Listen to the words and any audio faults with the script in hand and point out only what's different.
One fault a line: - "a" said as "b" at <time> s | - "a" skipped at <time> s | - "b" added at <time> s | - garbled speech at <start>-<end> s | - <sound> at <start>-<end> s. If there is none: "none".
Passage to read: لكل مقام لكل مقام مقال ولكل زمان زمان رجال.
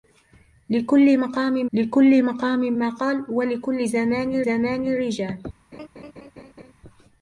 - laugh at 5.7-6.7 s